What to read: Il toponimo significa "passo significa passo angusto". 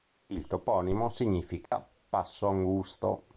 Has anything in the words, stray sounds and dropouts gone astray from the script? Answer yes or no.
yes